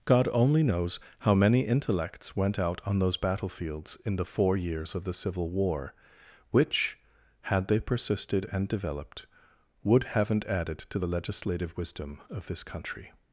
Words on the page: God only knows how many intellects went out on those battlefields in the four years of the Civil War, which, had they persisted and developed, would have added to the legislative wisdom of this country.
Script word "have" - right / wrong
wrong